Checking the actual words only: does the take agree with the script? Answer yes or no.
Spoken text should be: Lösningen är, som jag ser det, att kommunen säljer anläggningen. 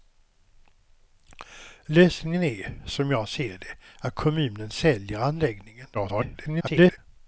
no